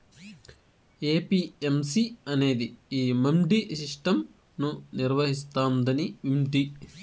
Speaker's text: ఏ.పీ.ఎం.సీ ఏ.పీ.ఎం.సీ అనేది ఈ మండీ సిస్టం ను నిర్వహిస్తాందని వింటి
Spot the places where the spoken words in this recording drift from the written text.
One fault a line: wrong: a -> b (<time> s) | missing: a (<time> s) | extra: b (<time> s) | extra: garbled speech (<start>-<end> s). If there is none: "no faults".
missing: ఏ.పీ.ఎం.సీ (2.0 s)